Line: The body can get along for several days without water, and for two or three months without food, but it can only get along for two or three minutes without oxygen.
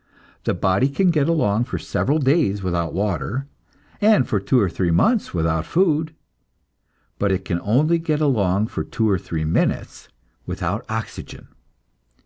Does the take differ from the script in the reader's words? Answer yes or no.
no